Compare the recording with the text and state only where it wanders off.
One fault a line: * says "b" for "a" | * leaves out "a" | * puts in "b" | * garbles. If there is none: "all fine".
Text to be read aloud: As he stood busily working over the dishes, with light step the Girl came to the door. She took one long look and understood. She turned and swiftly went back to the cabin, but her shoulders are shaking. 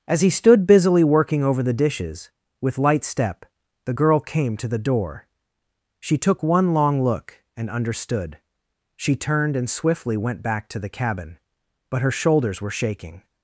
* says "were" for "are"